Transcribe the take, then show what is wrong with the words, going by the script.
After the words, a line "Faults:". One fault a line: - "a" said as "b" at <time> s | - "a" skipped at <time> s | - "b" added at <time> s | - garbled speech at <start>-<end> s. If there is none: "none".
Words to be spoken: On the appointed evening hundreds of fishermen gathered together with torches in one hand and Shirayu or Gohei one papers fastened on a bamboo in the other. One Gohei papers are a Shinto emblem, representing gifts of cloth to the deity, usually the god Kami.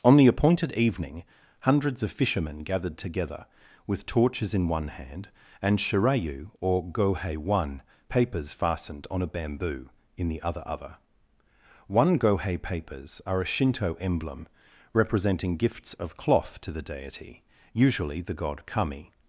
On the appointed evening hundreds of fishermen gathered together with torches in one hand and Shirayu or Gohei one papers fastened on a bamboo in the other other. One Gohei papers are a Shinto emblem, representing gifts of cloth to the deity, usually the god Kami.
Faults:
- "other" added at 10.7 s